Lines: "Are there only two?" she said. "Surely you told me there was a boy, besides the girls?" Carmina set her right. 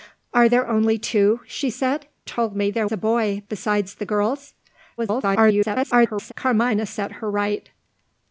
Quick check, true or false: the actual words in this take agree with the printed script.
false